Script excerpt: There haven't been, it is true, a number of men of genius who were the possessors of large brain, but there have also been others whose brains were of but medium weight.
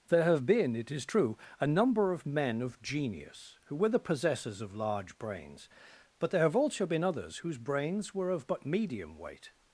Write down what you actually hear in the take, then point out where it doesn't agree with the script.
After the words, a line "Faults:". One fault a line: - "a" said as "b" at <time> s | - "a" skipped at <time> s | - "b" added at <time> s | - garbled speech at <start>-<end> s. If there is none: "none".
There have been, it is true, a number of men of genius who were the possessors of large brains, but there have also been others whose brains were of but medium weight.
Faults:
- "haven't" said as "have" at 0.2 s
- "brain" said as "brains" at 5.2 s